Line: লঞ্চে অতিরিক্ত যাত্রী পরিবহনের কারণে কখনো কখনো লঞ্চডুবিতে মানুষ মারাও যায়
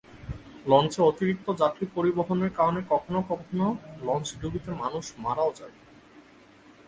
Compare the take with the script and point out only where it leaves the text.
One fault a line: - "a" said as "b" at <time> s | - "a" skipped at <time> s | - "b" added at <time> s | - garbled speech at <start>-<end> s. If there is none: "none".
none